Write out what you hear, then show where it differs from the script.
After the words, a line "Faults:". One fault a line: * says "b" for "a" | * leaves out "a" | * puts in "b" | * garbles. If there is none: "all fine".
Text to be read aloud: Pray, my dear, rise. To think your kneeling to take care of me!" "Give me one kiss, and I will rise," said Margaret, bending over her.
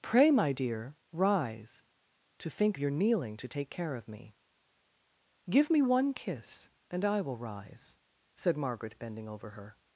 Pray, my dear, rise. To think your kneeling to take care of me!" "Give me one kiss, and I will rise," said Margaret, bending over her.
Faults:
all fine